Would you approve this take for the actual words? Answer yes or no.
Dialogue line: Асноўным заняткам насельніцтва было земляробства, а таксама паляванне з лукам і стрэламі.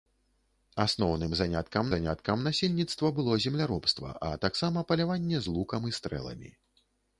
no